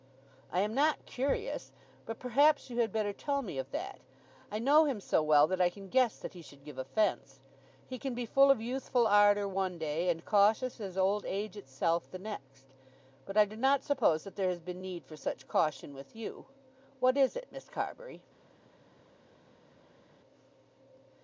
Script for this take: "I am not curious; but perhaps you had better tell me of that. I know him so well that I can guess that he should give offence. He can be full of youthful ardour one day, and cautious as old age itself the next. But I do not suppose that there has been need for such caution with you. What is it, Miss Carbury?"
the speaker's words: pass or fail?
pass